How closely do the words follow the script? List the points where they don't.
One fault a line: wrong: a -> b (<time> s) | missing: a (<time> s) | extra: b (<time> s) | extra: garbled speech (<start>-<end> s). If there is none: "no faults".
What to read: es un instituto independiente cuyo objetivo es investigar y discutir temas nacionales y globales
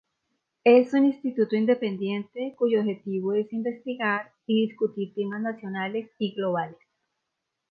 no faults